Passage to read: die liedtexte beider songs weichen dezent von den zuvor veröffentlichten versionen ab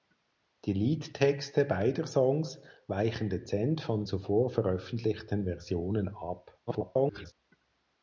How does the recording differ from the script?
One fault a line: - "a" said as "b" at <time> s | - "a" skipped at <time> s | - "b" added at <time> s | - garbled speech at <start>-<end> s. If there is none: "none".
- "den" skipped at 4.0 s
- garbled speech at 6.7-7.3 s